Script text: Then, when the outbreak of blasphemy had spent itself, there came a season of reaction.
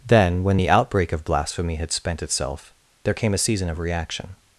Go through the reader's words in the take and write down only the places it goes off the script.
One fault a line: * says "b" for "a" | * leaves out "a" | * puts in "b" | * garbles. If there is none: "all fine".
all fine